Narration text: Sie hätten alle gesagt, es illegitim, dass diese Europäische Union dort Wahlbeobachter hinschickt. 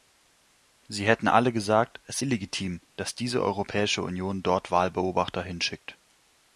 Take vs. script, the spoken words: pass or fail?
pass